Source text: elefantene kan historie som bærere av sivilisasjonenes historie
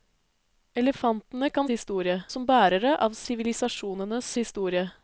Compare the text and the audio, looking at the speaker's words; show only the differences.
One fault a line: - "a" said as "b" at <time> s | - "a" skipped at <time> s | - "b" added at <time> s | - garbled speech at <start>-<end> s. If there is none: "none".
none